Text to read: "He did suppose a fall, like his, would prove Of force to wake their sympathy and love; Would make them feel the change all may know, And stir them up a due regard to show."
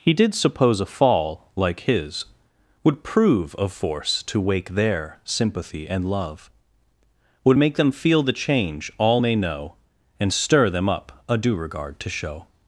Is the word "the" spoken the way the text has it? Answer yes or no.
yes